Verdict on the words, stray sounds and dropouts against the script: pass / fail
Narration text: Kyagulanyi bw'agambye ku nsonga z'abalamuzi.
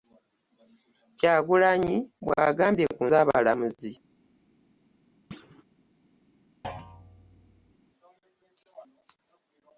fail